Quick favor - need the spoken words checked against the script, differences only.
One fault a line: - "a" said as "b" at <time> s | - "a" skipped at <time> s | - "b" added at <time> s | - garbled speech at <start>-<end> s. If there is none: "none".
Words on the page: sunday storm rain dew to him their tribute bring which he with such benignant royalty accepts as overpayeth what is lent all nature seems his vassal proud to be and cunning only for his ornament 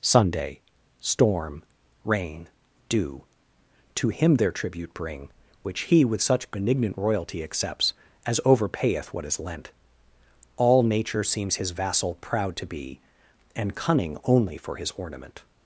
none